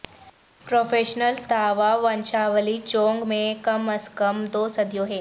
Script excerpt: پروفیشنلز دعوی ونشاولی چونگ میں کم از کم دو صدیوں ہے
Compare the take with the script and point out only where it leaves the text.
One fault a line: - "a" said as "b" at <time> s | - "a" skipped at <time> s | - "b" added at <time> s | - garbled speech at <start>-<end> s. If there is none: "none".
none